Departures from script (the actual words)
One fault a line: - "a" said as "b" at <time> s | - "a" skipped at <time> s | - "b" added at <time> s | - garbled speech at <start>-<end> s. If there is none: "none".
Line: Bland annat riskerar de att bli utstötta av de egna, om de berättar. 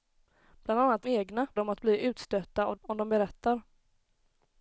- "riskerar" said as "egna" at 1.1 s
- "de egna" skipped at 2.8 s